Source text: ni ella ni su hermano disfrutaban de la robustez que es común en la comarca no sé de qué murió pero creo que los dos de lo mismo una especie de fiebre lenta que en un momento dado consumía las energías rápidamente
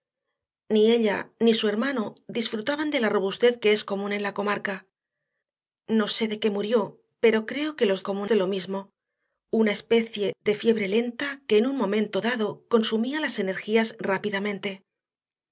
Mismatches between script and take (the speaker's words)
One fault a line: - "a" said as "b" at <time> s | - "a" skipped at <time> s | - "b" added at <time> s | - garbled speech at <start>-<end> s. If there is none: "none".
- "dos" said as "común" at 8.0 s